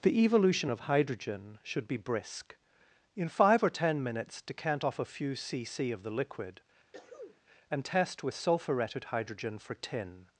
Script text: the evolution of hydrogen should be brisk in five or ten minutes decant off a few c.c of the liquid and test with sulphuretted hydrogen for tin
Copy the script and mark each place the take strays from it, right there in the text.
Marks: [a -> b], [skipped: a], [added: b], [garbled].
the evolution of hydrogen should be brisk in five or ten minutes decant off a few c.c of the liquid and test with sulphuretted hydrogen for tin